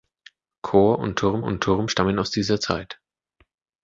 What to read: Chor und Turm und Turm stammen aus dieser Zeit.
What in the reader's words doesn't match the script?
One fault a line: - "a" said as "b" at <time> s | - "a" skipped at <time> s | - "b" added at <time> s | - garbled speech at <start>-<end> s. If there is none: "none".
none